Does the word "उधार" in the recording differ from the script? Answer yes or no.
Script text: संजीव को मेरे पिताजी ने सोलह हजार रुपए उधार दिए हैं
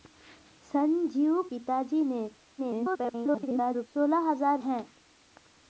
yes